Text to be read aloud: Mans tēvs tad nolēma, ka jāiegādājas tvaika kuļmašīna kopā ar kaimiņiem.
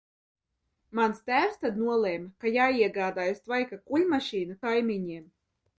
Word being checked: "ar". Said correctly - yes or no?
no